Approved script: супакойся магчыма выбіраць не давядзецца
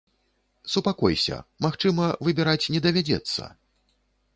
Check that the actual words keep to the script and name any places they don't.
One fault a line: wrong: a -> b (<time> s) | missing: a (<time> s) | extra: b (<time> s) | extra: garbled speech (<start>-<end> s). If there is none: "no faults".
no faults